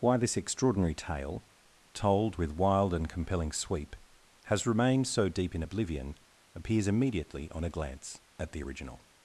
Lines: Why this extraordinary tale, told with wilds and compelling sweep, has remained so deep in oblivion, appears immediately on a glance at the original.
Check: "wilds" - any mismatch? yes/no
yes